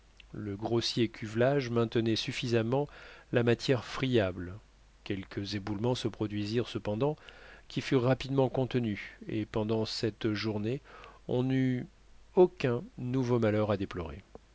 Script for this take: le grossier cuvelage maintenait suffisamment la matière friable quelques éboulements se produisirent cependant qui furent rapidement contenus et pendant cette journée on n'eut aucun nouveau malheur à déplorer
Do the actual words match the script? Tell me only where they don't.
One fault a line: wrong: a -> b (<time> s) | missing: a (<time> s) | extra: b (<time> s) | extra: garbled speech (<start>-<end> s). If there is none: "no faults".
no faults